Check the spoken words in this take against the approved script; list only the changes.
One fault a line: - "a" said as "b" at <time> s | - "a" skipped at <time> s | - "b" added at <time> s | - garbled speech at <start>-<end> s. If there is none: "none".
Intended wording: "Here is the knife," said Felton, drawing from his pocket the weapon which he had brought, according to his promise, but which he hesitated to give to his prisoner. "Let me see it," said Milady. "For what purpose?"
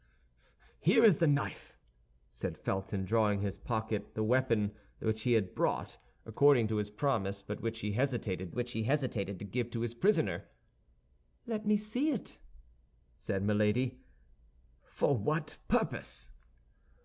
- "which he hesitated" added at 8.5 s